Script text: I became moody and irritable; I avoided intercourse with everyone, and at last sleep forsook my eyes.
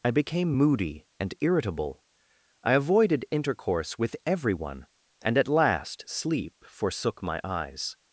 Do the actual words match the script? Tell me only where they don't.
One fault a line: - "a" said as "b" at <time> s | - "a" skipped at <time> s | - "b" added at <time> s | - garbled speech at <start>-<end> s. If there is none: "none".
none